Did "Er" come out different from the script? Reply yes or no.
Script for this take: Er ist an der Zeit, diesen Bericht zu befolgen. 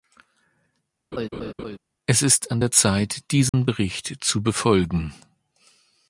yes